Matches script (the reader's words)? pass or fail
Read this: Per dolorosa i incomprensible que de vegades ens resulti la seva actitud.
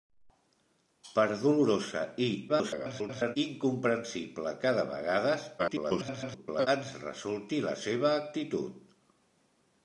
fail